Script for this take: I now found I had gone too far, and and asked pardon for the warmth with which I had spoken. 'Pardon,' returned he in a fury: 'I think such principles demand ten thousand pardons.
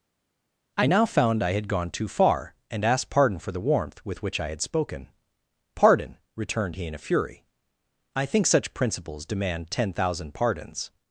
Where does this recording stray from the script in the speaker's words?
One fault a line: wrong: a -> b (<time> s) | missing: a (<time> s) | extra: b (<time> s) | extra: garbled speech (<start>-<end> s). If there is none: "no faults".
missing: and (2.8 s)